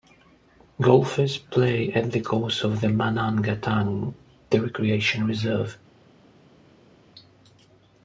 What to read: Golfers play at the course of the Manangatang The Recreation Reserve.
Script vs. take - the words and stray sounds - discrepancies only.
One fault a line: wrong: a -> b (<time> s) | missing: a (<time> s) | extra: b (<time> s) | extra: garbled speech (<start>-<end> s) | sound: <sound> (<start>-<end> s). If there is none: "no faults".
no faults